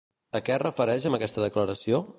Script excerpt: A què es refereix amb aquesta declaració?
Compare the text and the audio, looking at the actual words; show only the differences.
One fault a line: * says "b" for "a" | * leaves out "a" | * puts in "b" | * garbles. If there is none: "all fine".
all fine